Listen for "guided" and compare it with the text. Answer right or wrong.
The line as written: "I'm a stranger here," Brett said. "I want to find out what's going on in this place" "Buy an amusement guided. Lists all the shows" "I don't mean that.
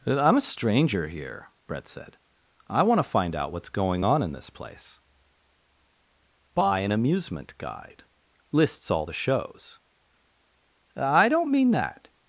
wrong